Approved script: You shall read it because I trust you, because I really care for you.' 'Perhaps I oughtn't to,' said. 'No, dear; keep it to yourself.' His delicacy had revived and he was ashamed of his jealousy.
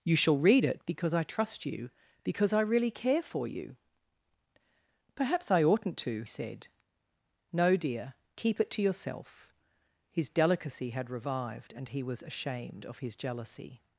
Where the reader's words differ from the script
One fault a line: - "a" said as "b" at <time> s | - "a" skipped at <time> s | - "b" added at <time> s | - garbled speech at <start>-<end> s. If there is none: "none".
none